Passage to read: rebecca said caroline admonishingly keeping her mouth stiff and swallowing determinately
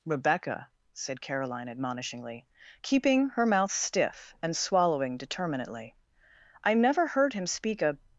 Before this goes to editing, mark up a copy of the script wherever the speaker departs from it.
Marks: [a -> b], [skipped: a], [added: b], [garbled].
rebecca said caroline admonishingly keeping her mouth stiff and swallowing determinately [added: i never heard him speak a]